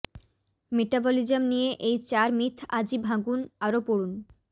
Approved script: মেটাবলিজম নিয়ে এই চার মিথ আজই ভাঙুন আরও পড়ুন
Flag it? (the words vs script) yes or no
no